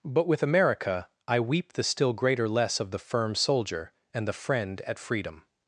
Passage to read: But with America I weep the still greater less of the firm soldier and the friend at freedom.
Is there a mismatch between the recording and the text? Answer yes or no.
no